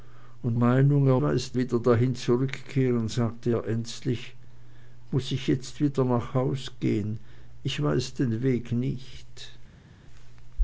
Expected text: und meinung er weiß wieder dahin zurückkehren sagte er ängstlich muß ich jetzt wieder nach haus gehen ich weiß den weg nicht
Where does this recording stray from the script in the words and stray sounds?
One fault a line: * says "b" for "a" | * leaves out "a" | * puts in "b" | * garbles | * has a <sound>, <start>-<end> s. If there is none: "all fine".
all fine